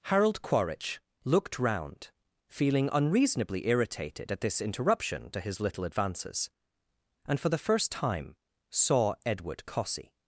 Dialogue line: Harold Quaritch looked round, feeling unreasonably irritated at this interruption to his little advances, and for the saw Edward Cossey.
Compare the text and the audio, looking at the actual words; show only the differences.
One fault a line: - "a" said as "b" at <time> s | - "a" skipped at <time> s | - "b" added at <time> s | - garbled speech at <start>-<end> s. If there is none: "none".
- "first time" added at 7.6 s